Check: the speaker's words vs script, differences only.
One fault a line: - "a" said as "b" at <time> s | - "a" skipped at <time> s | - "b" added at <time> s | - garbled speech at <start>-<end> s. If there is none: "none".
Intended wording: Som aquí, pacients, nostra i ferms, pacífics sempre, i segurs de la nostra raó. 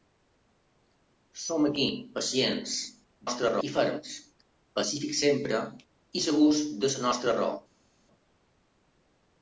none